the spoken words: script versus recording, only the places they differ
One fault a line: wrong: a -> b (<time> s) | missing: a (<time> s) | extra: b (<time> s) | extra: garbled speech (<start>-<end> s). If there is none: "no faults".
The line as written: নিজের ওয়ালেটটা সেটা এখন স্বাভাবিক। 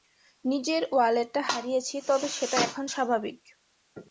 extra: হারিয়েছি তবে (1.5 s)